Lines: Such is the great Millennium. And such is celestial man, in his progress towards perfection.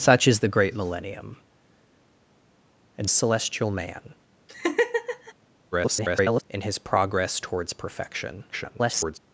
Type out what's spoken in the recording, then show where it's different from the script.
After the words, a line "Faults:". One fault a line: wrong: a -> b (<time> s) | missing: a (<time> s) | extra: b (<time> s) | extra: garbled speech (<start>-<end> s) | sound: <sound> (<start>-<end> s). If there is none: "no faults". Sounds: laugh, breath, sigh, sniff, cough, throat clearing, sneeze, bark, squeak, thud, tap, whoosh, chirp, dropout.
Such is the great Millennium. And celestial man, [garbled] in his progress towards perfection. [garbled]
Faults:
missing: such is (3.1 s)
sound: laugh (4.5-5.3 s)
extra: garbled speech (5.7-6.4 s)
extra: garbled speech (8.5-9.2 s)